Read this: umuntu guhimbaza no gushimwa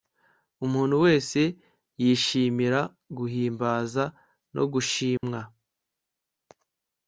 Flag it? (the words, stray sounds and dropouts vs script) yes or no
yes